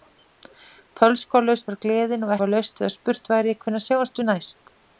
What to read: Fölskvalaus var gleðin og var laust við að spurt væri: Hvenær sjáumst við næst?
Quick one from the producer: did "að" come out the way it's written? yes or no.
yes